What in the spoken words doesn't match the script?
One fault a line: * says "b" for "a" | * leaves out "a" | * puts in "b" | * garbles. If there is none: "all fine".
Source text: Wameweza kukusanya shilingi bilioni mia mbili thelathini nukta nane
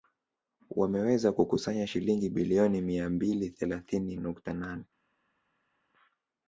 all fine